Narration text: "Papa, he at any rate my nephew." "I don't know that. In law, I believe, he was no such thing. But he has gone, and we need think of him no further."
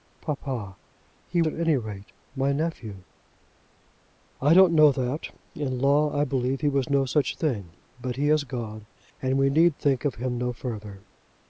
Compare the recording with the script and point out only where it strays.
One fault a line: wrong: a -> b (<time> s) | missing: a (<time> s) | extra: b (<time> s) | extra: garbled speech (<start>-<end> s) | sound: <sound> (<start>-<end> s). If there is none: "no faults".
no faults